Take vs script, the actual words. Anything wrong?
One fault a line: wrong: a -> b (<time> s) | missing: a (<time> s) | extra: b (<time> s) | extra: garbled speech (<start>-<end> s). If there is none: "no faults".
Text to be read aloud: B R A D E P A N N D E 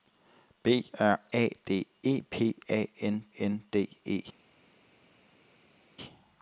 no faults